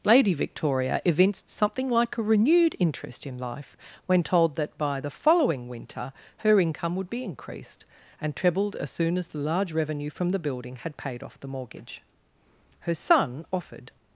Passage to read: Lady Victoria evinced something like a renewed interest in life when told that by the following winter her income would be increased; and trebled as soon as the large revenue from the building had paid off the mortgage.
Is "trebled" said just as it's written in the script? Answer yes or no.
yes